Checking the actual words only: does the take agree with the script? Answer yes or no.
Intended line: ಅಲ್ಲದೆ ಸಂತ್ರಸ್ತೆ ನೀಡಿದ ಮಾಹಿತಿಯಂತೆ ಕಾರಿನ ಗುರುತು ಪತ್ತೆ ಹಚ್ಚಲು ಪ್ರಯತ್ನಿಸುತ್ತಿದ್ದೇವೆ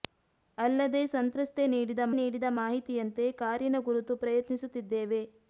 no